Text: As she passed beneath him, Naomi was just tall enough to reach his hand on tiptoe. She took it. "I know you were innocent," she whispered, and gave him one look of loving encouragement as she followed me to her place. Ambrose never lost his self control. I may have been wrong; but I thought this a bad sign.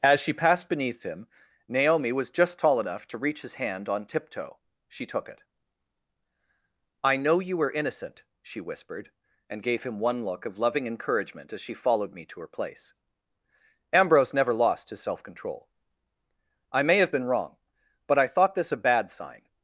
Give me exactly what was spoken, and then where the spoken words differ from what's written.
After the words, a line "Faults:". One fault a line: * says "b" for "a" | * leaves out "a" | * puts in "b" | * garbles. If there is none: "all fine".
As she passed beneath him, Naomi was just tall enough to reach his hand on tiptoe. She took it. "I know you were innocent," she whispered, and gave him one look of loving encouragement as she followed me to her place. Ambrose never lost his self control. I may have been wrong; but I thought this a bad sign.
Faults:
all fine